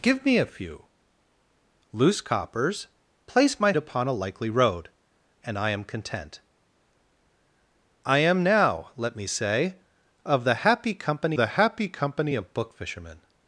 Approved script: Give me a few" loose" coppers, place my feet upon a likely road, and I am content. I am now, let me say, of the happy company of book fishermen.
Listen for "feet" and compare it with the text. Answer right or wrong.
wrong